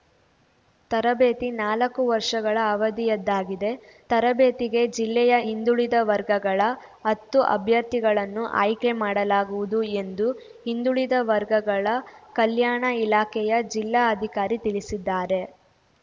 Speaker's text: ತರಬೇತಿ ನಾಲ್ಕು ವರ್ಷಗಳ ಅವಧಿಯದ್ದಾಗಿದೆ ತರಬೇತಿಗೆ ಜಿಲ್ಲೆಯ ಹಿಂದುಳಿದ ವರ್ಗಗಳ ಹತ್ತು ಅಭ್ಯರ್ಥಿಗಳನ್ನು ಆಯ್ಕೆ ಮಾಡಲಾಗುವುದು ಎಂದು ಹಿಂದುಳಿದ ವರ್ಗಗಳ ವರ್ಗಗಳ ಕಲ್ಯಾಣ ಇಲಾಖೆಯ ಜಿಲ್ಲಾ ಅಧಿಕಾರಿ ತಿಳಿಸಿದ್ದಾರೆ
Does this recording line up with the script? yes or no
no